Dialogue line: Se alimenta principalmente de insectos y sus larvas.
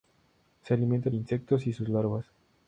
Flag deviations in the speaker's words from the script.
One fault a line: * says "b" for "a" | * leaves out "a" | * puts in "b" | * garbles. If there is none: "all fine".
* leaves out "principalmente"